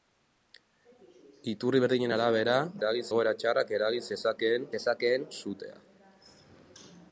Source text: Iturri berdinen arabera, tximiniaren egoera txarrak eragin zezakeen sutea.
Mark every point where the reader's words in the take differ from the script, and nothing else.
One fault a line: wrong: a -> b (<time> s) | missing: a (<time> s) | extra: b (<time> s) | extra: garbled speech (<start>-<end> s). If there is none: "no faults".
wrong: tximiniaren -> eragin (2.8 s)
extra: zezakeen (4.7 s)